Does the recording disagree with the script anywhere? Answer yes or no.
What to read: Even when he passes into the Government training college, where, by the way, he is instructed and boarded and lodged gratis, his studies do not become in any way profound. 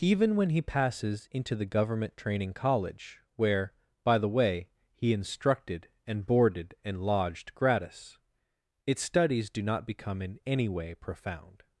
yes